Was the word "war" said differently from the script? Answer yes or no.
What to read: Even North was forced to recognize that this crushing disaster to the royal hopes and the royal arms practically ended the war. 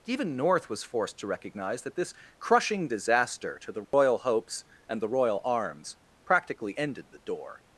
yes